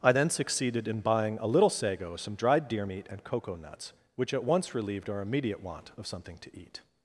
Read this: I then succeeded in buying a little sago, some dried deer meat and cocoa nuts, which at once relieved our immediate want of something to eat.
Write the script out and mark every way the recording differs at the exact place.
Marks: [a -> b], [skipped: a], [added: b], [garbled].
I then succeeded in buying a little sago, some dried deer meat and cocoa nuts, which at once relieved our immediate want of something to eat.